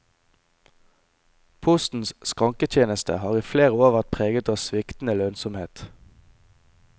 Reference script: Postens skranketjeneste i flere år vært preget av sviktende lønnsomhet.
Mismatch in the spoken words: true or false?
true